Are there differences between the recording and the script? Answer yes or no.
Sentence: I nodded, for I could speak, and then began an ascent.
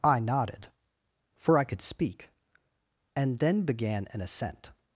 no